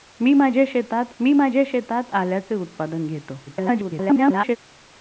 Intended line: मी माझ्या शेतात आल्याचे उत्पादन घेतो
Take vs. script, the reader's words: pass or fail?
fail